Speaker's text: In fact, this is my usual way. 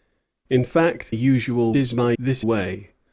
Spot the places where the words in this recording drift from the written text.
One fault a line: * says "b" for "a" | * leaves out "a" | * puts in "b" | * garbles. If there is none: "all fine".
* says "usual" for "this"
* says "this" for "usual"